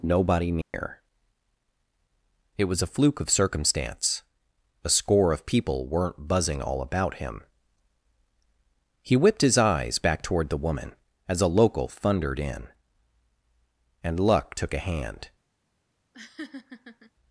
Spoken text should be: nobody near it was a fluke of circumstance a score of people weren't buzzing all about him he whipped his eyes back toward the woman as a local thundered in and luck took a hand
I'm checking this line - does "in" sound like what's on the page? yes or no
yes